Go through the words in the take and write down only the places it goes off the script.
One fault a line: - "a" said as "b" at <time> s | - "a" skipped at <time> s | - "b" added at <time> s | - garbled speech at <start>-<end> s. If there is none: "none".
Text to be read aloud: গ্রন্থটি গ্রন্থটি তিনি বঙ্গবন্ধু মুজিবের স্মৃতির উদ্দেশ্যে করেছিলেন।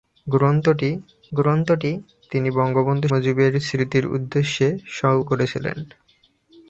none